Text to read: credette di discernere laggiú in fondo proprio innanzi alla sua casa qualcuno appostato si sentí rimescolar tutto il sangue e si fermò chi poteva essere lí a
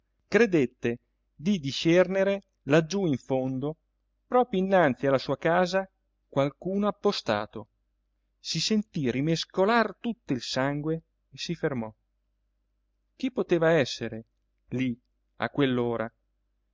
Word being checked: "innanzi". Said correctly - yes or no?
yes